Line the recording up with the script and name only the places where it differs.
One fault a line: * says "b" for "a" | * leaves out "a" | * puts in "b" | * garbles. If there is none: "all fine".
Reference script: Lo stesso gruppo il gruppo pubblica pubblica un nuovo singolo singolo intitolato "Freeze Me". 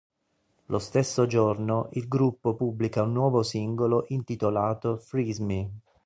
* says "giorno" for "gruppo"
* leaves out "pubblica"
* leaves out "singolo"